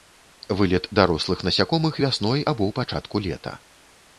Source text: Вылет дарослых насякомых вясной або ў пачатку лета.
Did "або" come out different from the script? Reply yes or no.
no